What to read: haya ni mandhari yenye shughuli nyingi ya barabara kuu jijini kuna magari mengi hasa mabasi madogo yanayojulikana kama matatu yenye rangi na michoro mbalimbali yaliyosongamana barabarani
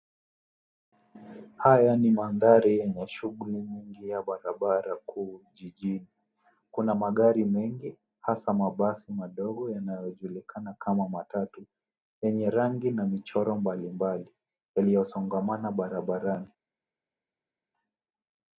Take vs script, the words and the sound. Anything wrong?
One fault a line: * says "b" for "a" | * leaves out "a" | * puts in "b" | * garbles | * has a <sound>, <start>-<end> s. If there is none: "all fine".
all fine